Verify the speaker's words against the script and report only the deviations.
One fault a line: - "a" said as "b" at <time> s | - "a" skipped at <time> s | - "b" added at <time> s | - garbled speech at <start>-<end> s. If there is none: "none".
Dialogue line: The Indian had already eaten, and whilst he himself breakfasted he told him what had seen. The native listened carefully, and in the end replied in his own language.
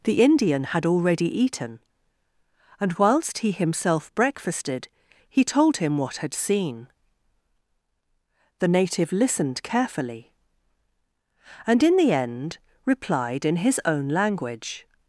none